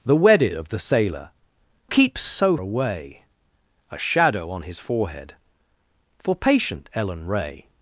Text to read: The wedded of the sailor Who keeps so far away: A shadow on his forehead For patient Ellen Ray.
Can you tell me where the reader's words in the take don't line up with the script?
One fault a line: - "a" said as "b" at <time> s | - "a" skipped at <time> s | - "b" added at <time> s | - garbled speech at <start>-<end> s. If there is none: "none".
- "Who" skipped at 1.3 s
- "far" skipped at 2.6 s